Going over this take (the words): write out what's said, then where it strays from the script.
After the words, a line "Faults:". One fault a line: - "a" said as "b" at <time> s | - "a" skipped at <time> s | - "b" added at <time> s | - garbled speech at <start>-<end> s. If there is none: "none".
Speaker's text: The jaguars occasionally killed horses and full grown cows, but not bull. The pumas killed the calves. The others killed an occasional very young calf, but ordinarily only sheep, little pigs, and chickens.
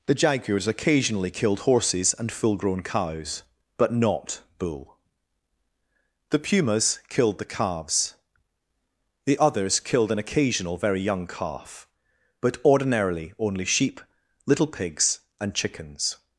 The jaguars occasionally killed horses and full grown cows, but not bull. The pumas killed the calves. The others killed an occasional very young calf, but ordinarily only sheep, little pigs, and chickens.
Faults:
none